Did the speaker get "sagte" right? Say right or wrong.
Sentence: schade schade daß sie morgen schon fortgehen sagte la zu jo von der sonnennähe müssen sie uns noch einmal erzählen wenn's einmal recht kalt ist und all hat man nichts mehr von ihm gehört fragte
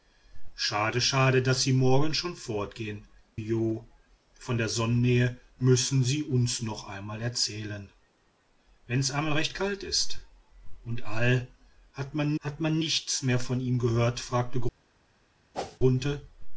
wrong